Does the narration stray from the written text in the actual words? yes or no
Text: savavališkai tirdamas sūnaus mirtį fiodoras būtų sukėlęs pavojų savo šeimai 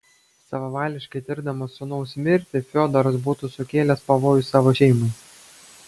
no